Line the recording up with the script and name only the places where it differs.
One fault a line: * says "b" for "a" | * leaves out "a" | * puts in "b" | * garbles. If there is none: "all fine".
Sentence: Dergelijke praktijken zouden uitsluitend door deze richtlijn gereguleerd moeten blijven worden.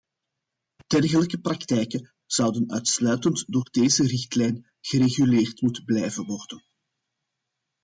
all fine